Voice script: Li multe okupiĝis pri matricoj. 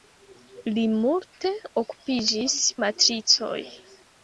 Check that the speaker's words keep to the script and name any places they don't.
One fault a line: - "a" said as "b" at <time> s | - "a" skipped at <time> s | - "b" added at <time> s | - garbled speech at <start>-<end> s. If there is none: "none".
- "pri" skipped at 2.5 s